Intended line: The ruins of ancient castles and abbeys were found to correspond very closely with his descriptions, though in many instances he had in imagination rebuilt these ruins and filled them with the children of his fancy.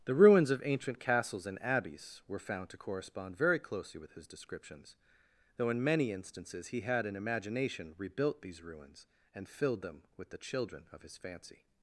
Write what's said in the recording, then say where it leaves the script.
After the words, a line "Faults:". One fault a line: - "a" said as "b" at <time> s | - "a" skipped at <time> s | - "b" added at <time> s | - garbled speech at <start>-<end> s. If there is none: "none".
The ruins of ancient castles and abbeys were found to correspond very closely with his descriptions, though in many instances he had in imagination rebuilt these ruins and filled them with the children of his fancy.
Faults:
none